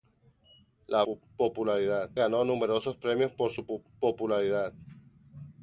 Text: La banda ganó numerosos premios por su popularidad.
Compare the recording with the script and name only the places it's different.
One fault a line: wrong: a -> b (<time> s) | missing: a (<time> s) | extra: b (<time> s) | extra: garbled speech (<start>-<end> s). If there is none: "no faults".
wrong: banda -> popularidad (1.0 s)